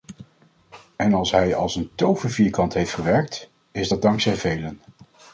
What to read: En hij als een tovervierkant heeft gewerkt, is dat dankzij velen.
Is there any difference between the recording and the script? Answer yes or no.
yes